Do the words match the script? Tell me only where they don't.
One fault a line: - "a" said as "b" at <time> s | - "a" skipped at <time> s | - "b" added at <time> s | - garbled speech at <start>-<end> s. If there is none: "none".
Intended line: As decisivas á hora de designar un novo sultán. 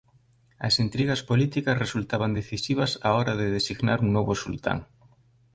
- "intrigas políticas resultaban" added at 0.8 s